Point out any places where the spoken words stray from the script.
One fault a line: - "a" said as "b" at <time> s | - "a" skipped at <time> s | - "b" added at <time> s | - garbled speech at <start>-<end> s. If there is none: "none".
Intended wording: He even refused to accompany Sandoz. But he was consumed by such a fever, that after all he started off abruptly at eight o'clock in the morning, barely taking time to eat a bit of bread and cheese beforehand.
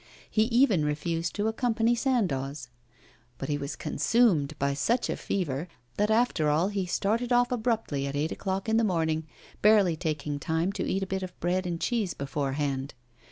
none